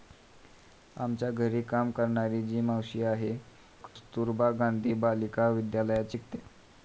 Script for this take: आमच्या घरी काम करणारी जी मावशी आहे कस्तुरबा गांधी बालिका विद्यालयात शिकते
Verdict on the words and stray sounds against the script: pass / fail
fail